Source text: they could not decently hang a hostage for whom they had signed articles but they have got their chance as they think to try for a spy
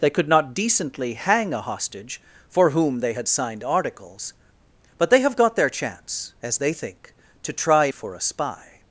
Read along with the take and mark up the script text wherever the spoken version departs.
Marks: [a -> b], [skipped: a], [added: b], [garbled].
they could not decently hang a hostage for whom they had signed articles but they have got their chance as they think to try for a spy